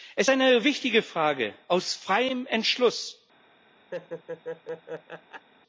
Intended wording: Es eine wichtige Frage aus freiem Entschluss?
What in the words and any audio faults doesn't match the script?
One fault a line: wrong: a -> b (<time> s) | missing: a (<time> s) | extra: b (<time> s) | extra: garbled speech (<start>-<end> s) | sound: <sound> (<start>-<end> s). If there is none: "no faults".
sound: laugh (3.9-5.5 s)